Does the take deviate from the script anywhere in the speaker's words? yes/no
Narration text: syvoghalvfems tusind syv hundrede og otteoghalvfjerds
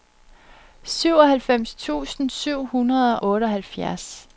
yes